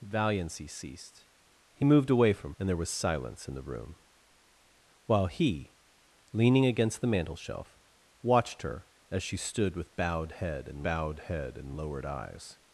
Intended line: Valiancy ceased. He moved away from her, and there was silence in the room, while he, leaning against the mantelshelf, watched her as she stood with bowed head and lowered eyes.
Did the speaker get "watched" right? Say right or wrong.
right